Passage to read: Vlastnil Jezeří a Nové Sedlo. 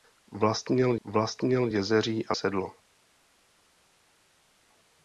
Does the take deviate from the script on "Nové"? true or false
true